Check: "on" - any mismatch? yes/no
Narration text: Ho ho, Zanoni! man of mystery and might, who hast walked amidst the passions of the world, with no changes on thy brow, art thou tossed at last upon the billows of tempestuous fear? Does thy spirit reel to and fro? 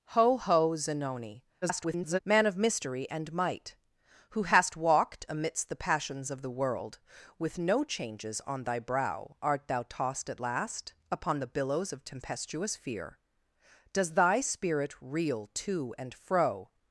no